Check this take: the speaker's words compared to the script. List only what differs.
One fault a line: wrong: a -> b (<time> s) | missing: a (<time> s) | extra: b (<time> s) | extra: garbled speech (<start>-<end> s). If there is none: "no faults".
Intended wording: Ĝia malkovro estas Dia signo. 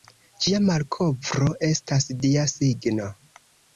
no faults